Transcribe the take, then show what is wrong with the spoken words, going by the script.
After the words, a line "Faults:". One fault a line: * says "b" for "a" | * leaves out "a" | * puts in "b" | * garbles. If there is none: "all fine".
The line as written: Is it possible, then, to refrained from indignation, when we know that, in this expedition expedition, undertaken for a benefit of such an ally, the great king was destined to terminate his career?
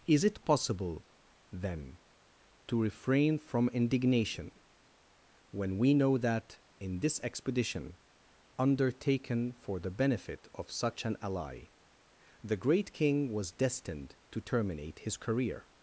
Is it possible, then, to refrain from indignation, when we know that, in this expedition, undertaken for the benefit of such an ally, the great king was destined to terminate his career?
Faults:
* says "refrain" for "refrained"
* leaves out "expedition"
* says "the" for "a"